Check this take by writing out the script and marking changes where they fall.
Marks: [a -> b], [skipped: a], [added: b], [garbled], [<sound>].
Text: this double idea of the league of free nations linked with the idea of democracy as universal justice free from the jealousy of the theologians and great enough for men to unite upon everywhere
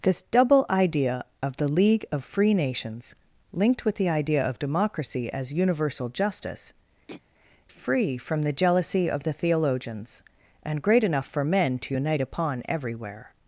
this double idea of the league of free nations linked with the idea of democracy as universal justice [throat clearing] free from the jealousy of the theologians and great enough for men to unite upon everywhere